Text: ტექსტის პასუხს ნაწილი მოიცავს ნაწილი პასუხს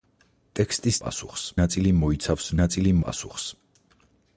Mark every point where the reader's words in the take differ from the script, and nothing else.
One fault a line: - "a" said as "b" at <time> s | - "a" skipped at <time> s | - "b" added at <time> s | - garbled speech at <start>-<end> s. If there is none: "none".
none